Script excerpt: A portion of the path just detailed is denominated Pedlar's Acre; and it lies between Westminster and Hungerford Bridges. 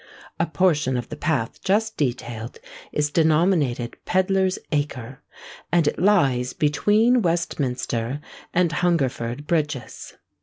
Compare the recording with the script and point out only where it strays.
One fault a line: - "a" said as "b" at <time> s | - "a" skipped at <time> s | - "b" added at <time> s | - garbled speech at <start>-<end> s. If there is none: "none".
none